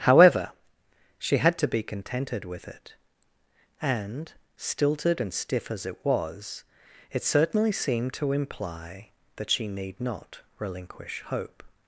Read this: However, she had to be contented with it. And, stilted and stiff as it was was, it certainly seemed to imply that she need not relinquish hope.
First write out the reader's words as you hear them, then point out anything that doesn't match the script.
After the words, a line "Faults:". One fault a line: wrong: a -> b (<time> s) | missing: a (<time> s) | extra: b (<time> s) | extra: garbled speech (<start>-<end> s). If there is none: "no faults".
However, she had to be contented with it. And, stilted and stiff as it was, it certainly seemed to imply that she need not relinquish hope.
Faults:
missing: was (6.6 s)